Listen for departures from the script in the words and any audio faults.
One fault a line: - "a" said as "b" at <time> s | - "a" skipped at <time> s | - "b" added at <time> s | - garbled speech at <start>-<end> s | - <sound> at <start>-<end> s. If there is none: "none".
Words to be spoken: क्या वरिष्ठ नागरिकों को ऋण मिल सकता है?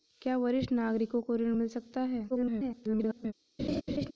- garbled speech at 2.3-3.3 s
- laugh at 3.6-4.1 s